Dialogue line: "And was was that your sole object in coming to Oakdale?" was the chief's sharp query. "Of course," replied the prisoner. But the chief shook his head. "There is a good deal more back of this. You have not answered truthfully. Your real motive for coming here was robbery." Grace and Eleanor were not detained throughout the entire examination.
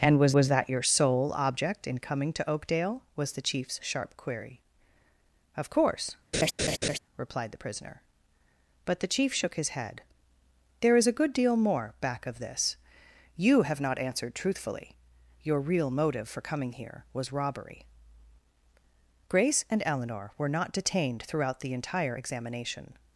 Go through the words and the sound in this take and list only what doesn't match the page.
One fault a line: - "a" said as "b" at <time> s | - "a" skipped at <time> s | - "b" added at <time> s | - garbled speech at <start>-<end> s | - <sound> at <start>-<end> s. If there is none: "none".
- laugh at 6.3-7.0 s